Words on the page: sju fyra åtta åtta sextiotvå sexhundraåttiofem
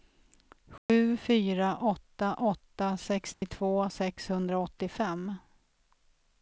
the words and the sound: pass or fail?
fail